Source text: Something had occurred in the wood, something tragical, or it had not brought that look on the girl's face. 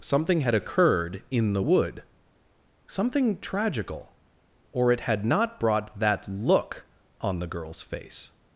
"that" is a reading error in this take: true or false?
false